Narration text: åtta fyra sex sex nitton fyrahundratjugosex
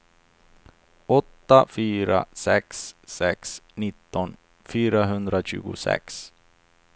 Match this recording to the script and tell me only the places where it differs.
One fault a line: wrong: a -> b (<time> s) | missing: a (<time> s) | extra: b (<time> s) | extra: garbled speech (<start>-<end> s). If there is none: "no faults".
no faults